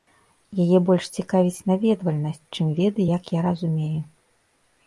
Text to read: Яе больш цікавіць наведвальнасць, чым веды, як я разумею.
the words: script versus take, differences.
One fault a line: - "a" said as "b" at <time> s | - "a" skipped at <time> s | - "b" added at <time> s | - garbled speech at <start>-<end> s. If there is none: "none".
none